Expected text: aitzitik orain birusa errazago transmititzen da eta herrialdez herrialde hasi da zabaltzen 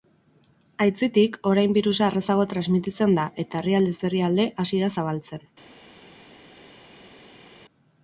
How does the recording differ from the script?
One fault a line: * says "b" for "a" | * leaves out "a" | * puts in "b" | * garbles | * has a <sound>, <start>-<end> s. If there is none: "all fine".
all fine